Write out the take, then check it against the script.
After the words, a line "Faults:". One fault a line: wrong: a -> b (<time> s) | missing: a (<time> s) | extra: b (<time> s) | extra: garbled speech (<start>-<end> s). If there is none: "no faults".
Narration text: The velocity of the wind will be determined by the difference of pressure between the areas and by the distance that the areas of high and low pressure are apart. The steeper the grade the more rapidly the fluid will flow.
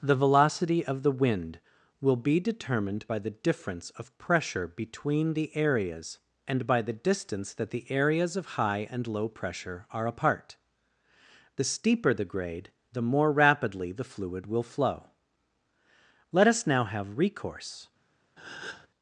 The velocity of the wind will be determined by the difference of pressure between the areas and by the distance that the areas of high and low pressure are apart. The steeper the grade the more rapidly the fluid will flow. Let us now have recourse
Faults:
extra: Let us now have recourse (16.3 s)